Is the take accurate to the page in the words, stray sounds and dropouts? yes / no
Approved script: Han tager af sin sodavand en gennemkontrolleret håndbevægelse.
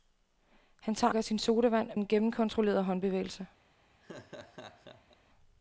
no